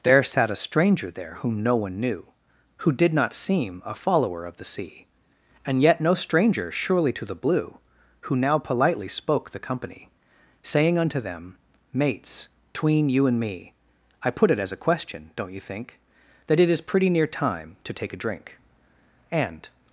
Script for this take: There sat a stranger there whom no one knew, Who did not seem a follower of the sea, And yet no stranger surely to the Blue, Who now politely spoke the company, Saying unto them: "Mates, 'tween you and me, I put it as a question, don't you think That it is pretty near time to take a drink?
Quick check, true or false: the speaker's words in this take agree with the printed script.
false